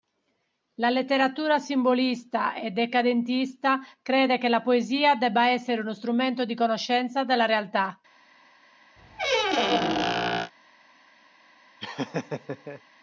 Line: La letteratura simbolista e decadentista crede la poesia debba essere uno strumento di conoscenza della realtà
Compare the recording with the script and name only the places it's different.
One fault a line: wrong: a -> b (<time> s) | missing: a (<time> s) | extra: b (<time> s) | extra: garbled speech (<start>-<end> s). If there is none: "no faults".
extra: che (4.4 s)